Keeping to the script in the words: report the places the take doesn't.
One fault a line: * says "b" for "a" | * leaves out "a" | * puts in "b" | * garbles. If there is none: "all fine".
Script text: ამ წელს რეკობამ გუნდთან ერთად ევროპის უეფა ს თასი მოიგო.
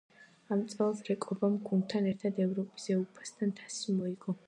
all fine